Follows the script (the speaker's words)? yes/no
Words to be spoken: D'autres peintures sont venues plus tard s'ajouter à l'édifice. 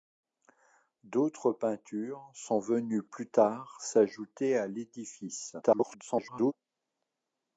no